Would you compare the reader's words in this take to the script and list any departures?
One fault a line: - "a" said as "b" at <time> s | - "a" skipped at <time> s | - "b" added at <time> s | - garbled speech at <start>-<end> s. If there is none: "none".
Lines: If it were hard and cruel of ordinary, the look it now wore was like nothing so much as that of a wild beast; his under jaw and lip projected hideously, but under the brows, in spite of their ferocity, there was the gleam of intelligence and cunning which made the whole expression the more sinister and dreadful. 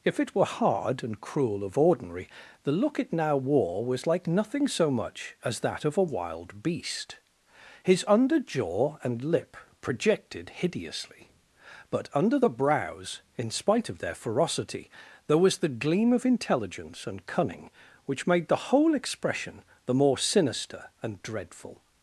none